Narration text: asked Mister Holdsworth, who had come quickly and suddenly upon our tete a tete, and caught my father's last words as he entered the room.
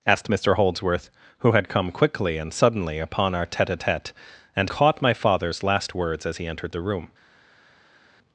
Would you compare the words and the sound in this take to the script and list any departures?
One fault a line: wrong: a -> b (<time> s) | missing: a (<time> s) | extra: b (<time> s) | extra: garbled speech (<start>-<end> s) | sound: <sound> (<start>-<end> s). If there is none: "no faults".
no faults